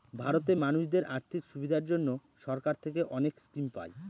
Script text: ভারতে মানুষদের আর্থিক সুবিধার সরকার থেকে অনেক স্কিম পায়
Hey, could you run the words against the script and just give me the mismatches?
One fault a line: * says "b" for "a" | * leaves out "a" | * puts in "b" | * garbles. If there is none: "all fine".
* puts in "জন্য"